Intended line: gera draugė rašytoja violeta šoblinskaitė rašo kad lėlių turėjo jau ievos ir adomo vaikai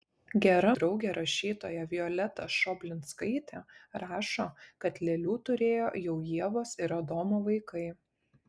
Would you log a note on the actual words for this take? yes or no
no